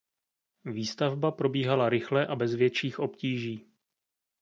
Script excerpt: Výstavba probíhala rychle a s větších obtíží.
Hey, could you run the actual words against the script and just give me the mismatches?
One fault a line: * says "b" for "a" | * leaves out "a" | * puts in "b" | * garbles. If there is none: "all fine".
* says "bez" for "s"